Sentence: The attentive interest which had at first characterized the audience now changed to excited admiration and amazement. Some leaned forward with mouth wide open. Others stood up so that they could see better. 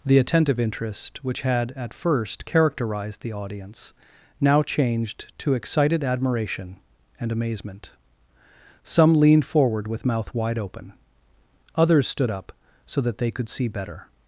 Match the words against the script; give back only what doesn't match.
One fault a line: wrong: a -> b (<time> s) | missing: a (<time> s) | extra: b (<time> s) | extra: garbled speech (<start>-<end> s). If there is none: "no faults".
no faults